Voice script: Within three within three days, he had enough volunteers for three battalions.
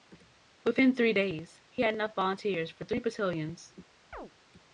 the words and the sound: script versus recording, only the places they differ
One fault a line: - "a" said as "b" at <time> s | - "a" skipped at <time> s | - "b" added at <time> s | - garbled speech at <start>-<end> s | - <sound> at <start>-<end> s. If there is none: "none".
- "within three" skipped at 1.1 s
- chirp at 4.1-4.3 s